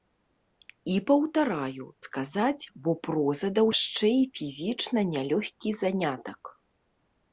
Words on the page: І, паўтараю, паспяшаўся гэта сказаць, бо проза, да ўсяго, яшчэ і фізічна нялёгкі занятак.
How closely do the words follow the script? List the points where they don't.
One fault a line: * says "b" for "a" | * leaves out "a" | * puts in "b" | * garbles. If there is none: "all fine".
* leaves out "паспяшаўся гэта"
* leaves out "ўсяго"